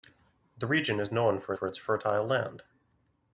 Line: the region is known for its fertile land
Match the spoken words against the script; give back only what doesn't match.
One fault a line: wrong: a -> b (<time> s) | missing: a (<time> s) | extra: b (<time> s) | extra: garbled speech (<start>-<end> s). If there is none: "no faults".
extra: for (1.5 s)